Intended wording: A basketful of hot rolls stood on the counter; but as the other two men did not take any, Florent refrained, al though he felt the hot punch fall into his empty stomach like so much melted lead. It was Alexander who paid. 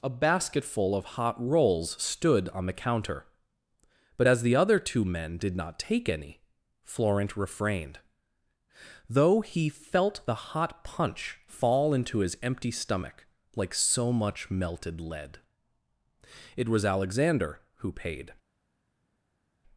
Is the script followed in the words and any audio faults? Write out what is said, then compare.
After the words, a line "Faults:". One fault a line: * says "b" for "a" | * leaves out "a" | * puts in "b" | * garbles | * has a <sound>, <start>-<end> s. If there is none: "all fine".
A basketful of hot rolls stood on the counter; but as the other two men did not take any, Florent refrained, though he felt the hot punch fall into his empty stomach like so much melted lead. It was Alexander who paid.
Faults:
* leaves out "al"